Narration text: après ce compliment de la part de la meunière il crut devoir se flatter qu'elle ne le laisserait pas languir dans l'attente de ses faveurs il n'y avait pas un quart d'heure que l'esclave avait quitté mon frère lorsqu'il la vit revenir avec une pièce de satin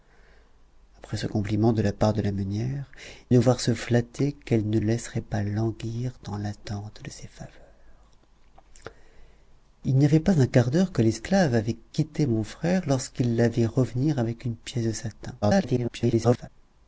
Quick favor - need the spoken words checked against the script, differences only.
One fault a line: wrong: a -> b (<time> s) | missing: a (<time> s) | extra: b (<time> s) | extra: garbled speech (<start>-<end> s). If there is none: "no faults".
missing: il crut (2.9 s)
missing: le (4.8 s)
extra: garbled speech (15.4-16.5 s)